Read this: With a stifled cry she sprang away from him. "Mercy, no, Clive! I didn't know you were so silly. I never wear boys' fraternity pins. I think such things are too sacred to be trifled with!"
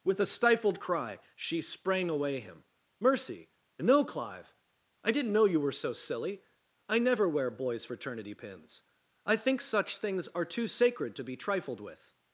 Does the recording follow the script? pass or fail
fail